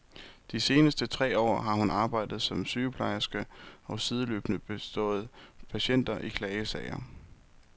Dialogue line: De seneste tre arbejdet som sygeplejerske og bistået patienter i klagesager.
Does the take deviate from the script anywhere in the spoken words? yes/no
yes